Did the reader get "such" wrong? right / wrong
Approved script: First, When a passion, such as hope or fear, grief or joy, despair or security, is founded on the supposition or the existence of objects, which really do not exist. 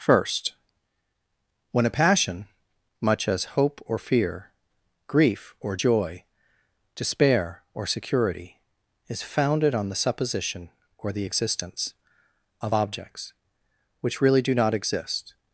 wrong